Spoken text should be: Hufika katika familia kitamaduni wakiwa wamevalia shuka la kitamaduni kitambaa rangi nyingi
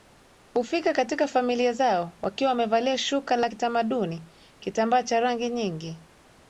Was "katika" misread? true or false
false